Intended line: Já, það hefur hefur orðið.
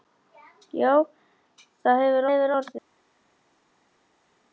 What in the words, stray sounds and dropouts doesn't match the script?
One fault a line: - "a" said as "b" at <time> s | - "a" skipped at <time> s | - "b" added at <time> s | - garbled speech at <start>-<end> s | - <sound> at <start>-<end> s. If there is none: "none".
none